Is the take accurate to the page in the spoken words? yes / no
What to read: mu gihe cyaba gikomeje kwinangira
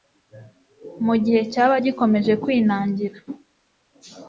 yes